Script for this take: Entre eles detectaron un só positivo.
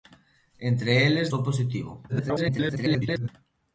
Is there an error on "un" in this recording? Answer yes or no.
yes